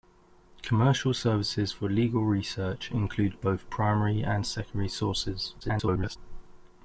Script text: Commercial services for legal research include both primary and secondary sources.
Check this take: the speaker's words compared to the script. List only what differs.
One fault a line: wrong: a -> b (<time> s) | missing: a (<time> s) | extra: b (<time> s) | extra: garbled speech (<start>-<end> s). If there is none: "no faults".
extra: garbled speech (5.6-6.2 s)